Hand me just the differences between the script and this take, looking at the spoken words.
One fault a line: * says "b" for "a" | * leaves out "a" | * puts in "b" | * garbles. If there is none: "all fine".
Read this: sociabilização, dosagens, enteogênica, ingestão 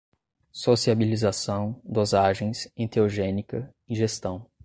all fine